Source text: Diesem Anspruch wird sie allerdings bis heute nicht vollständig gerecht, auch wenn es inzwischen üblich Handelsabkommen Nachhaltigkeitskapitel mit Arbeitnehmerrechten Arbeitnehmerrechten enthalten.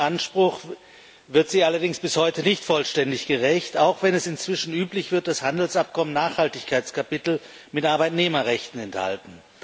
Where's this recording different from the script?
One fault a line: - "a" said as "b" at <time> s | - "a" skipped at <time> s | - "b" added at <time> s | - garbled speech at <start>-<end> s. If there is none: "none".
- "wird dass" added at 5.1 s
- "Arbeitnehmerrechten" skipped at 8.8 s